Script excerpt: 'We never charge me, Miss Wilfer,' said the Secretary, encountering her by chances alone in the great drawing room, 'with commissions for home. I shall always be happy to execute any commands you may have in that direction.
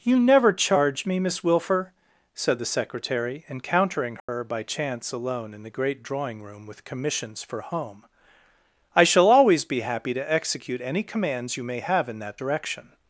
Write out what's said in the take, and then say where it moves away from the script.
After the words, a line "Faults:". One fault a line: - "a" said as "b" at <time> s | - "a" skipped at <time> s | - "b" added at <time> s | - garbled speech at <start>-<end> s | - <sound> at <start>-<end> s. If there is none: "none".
'You never charge me, Miss Wilfer,' said the Secretary, encountering her by chance alone in the great drawing room, 'with commissions for home. I shall always be happy to execute any commands you may have in that direction.
Faults:
- "We" said as "You" at 0.0 s
- dropout at 4.2-4.3 s
- "chances" said as "chance" at 4.6 s